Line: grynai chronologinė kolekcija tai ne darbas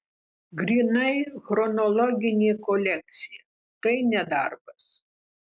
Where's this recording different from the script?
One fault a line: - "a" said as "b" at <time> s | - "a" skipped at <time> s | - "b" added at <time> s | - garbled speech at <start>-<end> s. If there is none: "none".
none